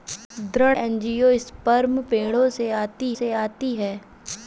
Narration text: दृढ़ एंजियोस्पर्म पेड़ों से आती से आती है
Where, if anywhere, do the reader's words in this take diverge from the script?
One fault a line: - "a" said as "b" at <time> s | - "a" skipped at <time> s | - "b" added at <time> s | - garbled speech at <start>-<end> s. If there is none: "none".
none